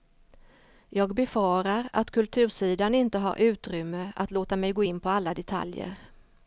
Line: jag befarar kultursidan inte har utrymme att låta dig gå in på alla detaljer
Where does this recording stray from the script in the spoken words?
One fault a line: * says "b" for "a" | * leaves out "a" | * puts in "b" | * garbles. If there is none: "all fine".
* puts in "att"
* says "mig" for "dig"